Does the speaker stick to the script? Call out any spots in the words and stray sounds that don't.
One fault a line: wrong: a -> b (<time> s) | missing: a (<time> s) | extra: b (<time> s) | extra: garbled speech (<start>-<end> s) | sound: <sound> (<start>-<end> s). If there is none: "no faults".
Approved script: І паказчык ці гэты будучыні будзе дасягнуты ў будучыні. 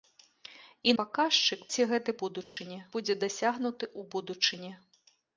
sound: dropout (2.4-2.6 s)